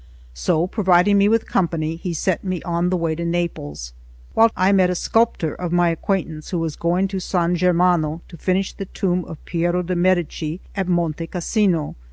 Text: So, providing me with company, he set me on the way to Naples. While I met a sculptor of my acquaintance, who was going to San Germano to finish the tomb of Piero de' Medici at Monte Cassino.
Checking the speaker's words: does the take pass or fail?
pass